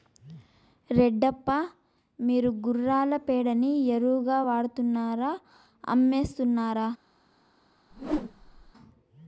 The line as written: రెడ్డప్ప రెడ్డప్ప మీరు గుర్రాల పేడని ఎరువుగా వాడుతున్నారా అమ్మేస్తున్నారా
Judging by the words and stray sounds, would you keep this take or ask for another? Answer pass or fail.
fail